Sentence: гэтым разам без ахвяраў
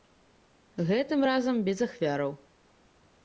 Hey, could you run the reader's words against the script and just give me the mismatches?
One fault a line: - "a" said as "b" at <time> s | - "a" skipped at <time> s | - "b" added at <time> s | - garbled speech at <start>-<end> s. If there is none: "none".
none